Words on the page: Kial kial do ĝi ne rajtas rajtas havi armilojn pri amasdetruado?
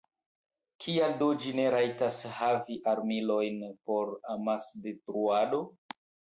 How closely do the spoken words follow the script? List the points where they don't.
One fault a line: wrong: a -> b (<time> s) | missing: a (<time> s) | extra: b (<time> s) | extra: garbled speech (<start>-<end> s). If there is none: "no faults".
missing: kial (1.1 s)
missing: rajtas (2.2 s)
wrong: pri -> por (3.9 s)